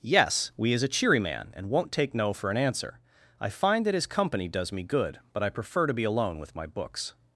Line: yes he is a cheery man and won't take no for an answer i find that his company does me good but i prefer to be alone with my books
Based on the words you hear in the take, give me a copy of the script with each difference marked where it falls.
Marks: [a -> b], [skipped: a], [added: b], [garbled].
yes [he -> we] is a cheery man and won't take no for an answer i find that his company does me good but i prefer to be alone with my books